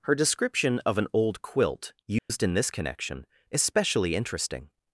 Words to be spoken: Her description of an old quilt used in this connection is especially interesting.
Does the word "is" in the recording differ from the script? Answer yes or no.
yes